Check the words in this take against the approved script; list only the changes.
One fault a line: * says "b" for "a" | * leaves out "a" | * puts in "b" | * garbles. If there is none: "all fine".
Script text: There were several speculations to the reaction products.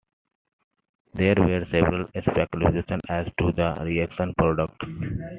* puts in "as"